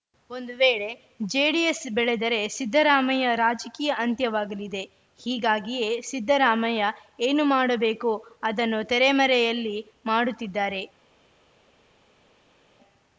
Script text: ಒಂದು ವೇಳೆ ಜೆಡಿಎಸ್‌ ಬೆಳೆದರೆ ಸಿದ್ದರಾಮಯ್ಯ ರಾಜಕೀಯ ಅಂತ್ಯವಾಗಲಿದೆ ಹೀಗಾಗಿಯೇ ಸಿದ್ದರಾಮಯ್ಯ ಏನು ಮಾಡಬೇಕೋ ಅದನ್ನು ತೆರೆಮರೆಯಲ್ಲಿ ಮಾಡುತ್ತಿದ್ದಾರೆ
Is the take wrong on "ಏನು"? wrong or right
right